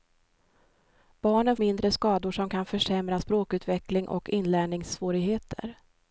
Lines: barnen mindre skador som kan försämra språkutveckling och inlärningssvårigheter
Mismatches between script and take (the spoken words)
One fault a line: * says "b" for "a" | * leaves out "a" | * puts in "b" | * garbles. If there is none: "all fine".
all fine